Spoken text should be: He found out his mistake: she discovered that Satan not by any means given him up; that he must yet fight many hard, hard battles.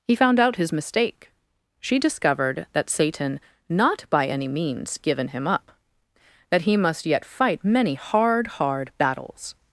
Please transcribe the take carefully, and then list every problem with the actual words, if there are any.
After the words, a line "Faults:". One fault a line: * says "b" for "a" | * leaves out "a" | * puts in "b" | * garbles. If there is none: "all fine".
He found out his mistake: she discovered that Satan not by any means given him up; that he must yet fight many hard, hard battles.
Faults:
all fine